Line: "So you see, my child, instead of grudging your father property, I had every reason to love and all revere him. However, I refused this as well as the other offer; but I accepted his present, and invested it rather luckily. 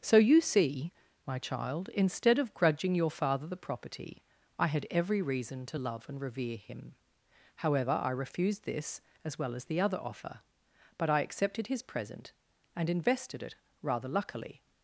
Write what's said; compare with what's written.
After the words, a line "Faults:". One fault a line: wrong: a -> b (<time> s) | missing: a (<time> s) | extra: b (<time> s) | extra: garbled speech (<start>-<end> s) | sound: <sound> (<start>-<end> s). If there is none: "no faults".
"So you see, my child, instead of grudging your father the property, I had every reason to love and revere him. However, I refused this as well as the other offer; but I accepted his present, and invested it rather luckily.
Faults:
extra: the (3.5 s)
missing: all (6.2 s)